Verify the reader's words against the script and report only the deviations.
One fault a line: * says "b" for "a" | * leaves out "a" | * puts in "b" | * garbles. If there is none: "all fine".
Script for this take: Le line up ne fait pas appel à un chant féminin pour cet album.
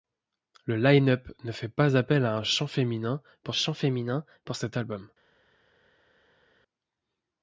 * puts in "chant féminin pour"